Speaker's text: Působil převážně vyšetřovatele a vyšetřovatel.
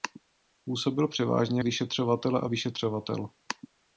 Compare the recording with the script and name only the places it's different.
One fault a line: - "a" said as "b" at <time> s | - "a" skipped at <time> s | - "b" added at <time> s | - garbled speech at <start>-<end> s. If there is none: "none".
none